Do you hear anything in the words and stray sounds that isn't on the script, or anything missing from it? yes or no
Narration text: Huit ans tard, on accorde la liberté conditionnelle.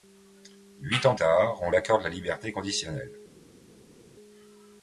no